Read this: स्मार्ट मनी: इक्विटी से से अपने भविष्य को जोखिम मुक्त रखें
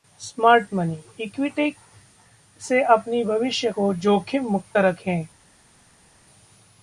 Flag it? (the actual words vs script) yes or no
yes